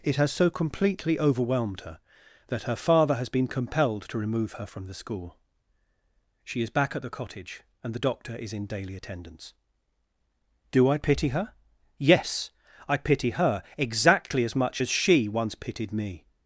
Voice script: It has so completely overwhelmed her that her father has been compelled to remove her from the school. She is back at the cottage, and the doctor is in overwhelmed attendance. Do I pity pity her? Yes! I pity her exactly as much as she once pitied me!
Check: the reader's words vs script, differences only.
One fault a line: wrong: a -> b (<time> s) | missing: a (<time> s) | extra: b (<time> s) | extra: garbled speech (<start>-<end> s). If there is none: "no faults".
wrong: overwhelmed -> daily (8.7 s)
missing: pity (11.3 s)